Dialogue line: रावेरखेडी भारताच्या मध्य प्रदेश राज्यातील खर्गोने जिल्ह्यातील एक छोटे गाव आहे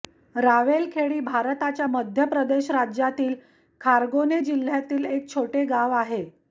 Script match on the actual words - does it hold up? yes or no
yes